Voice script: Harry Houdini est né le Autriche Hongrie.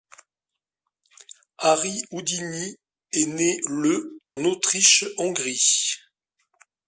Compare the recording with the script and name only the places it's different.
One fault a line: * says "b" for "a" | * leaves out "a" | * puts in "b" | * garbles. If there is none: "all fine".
all fine